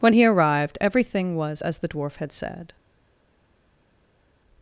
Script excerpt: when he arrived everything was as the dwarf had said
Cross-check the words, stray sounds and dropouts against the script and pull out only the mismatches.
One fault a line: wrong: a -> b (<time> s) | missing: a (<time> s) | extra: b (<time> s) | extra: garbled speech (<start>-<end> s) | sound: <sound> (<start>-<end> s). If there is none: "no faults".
no faults